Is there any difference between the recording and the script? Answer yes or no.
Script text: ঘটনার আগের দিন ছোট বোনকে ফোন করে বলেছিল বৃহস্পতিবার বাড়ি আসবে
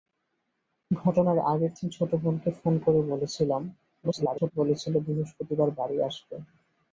yes